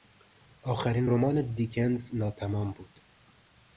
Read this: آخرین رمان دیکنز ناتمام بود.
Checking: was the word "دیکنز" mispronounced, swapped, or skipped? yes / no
no